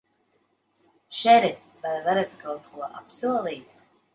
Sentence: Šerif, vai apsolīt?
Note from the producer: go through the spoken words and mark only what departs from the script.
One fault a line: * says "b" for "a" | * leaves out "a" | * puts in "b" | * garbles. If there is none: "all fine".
* puts in "varat kaut ko"